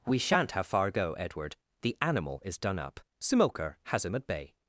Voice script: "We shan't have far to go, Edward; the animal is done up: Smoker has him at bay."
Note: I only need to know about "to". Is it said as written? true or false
false